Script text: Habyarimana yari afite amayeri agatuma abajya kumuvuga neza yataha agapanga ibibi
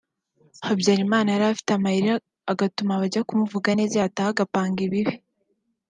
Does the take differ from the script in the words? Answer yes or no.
no